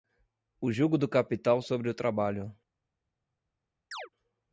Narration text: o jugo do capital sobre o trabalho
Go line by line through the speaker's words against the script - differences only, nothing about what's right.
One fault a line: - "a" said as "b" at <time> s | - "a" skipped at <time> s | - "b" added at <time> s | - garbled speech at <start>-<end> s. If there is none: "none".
none